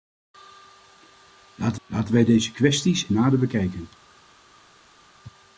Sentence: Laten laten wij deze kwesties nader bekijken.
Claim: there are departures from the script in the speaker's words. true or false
false